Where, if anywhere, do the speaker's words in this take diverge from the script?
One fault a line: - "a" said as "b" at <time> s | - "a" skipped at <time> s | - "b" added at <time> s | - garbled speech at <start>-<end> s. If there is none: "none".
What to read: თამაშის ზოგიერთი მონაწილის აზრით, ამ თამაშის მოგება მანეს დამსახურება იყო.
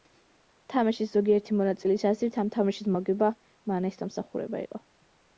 none